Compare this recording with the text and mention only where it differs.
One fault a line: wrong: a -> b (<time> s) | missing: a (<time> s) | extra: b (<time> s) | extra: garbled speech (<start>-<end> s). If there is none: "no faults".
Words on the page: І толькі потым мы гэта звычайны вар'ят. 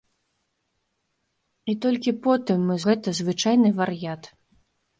no faults